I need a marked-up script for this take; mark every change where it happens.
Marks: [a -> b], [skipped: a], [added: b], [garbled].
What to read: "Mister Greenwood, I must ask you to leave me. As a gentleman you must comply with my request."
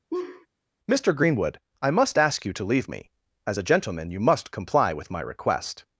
"Mister Greenwood, I must ask you to leave me. As a gentleman you must comply with my request."